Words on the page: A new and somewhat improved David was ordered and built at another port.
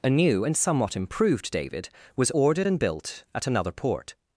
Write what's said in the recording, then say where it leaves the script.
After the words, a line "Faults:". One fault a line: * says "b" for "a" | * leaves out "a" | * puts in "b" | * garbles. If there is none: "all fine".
A new and somewhat improved David was ordered and built at another port.
Faults:
all fine